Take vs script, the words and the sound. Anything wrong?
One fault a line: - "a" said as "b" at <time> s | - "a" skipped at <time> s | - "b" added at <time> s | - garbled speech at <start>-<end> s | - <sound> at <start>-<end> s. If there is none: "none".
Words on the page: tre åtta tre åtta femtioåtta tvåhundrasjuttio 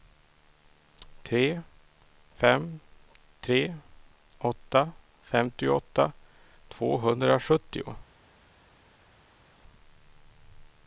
- "åtta" said as "fem" at 2.4 s